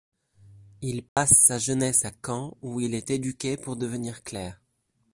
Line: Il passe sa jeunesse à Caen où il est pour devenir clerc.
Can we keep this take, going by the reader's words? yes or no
no